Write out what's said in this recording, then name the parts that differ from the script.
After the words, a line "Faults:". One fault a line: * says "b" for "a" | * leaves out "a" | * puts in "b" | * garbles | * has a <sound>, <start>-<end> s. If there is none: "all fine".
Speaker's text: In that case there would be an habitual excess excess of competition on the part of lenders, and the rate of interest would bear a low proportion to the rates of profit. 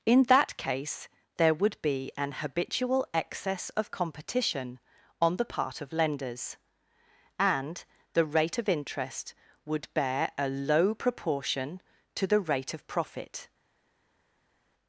In that case there would be an habitual excess of competition on the part of lenders, and the rate of interest would bear a low proportion to the rate of profit.
Faults:
* leaves out "excess"
* says "rate" for "rates"